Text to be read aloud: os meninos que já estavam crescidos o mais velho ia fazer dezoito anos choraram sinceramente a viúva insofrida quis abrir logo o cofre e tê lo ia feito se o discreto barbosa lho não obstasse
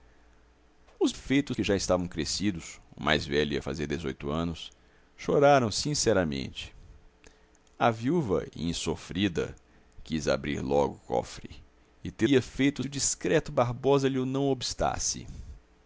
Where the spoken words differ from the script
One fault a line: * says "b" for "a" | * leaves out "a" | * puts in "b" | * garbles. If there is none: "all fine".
* says "feito" for "meninos"
* leaves out "lo"
* leaves out "se"